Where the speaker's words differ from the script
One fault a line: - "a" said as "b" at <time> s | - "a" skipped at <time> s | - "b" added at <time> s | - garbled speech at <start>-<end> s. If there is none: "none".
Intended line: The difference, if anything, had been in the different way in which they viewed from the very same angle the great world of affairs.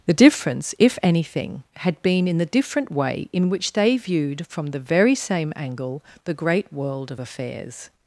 none